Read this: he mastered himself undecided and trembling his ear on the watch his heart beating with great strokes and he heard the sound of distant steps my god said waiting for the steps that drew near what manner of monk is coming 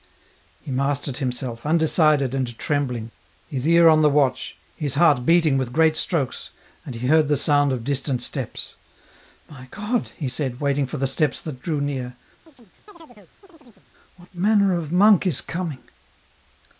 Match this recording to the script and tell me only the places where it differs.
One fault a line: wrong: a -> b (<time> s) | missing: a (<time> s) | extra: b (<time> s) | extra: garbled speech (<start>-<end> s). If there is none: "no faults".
extra: he (10.2 s)